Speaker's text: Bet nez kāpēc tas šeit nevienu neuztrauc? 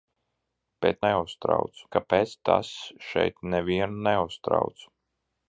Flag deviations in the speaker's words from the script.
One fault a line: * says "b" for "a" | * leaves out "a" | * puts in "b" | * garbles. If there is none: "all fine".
* says "neuztrauc" for "nez"